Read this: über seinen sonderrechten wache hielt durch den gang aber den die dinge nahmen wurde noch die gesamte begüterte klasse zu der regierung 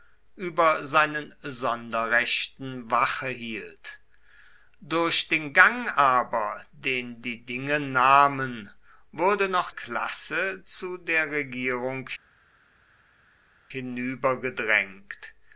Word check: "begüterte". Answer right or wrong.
wrong